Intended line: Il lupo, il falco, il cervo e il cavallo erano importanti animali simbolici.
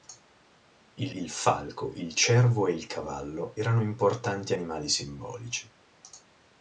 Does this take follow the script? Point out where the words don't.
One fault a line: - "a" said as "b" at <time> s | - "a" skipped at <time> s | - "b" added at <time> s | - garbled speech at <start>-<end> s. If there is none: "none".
- "lupo" skipped at 1.1 s